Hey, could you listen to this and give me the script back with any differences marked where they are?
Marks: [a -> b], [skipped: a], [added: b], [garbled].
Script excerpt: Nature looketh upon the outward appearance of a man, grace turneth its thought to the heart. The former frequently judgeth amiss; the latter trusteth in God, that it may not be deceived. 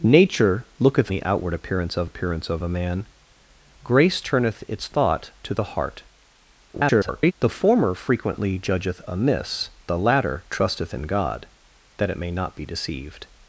Nature looketh [skipped: upon] the outward appearance of [added: appearance of] a man, grace turneth its thought to the heart. [garbled] The former frequently judgeth amiss; the latter trusteth in God, that it may not be deceived.